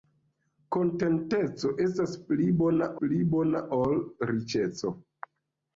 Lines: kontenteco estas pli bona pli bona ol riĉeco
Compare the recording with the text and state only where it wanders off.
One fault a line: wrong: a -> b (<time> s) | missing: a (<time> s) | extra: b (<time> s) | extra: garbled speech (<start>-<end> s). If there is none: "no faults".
no faults